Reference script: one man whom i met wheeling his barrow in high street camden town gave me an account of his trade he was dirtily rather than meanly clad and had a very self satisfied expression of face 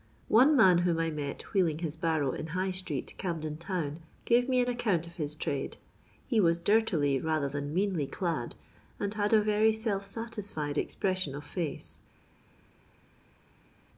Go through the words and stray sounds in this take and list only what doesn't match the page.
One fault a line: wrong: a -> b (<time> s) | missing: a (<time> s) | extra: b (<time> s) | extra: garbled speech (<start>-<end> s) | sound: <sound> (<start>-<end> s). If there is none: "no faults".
no faults